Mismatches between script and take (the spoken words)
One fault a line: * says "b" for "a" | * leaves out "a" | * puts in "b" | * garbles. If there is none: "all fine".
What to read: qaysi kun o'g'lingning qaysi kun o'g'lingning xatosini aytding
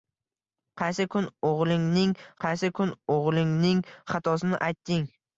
all fine